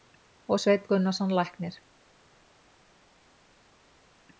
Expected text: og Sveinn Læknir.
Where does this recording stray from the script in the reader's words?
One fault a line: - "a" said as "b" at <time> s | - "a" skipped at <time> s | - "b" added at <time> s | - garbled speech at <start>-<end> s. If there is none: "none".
- "Gunnarsson" added at 0.9 s